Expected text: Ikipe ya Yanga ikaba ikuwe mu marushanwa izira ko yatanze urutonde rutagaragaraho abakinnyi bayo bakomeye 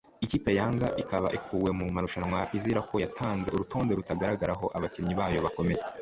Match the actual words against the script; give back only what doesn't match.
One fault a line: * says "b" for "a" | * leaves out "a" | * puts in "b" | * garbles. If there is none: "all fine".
all fine